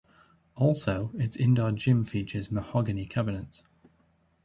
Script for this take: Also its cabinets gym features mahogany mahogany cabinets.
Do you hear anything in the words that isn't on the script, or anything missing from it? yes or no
yes